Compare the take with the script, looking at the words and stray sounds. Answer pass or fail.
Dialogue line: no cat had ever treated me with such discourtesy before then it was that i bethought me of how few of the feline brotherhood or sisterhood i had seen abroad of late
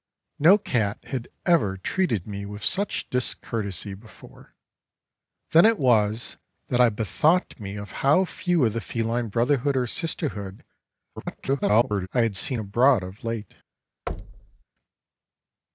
fail